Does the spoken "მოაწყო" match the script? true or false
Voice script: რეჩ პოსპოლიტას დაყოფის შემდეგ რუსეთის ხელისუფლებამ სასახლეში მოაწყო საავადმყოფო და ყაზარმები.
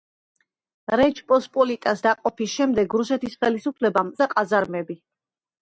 false